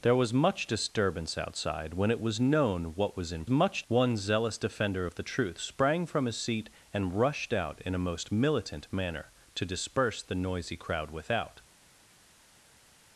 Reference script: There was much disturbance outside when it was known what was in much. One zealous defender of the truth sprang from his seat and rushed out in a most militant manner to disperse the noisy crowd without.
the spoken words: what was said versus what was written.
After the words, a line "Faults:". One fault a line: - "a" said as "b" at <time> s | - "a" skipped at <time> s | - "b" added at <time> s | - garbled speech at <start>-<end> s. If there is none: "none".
There was much disturbance outside when it was known what was in much. One zealous defender of the truth sprang from his seat and rushed out in a most militant manner to disperse the noisy crowd without.
Faults:
none